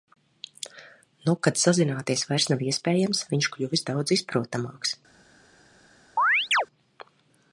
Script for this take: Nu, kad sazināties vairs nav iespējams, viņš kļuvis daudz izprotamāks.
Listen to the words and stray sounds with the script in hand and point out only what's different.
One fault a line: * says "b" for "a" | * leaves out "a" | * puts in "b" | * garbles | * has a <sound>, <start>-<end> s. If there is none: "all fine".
* has a chirp, 6.2-6.7 s